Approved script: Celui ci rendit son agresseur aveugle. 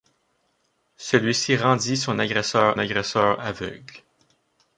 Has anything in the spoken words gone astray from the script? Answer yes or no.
yes